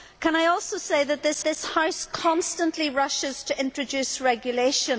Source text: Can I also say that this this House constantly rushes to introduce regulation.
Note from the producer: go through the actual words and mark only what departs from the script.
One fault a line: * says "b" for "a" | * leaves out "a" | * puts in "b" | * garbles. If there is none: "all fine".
all fine